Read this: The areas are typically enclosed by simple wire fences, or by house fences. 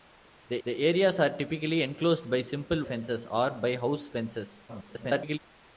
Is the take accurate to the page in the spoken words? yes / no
no